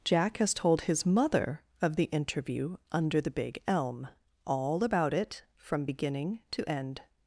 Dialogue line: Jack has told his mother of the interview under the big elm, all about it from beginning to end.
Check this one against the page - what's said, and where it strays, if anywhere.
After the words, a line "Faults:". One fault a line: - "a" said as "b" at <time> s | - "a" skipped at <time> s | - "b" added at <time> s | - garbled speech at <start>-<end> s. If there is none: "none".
Jack has told his mother of the interview under the big elm, all about it from beginning to end.
Faults:
none